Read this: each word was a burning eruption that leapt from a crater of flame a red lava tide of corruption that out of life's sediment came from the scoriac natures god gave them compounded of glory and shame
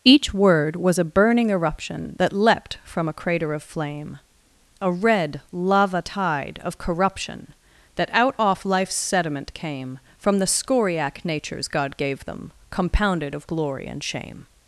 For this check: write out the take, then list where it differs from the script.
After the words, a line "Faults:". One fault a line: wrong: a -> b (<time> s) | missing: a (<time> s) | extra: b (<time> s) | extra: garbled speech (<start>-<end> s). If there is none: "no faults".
each word was a burning eruption that leapt from a crater of flame a red lava tide of corruption that out off life's sediment came from the scoriac natures god gave them compounded of glory and shame
Faults:
wrong: of -> off (8.4 s)